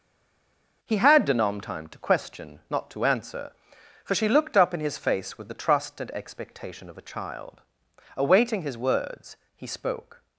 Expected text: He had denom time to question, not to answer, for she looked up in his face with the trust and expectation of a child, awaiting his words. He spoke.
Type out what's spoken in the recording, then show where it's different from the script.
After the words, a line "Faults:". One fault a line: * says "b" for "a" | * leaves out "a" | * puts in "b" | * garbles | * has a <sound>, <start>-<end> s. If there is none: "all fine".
He had denom time to question, not to answer, for she looked up in his face with the trust and expectation of a child, awaiting his words. He spoke.
Faults:
all fine